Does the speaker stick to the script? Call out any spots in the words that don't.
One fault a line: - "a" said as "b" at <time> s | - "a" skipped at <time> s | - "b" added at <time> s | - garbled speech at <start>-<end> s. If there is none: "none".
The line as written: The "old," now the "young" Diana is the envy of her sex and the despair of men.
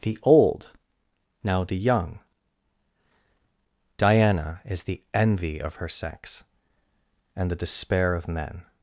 none